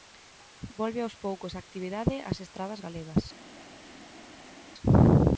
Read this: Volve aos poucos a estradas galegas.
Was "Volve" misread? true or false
false